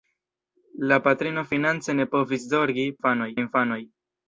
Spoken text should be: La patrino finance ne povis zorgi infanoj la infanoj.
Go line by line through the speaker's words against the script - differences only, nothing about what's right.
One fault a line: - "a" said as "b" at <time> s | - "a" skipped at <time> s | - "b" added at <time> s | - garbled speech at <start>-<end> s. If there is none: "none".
none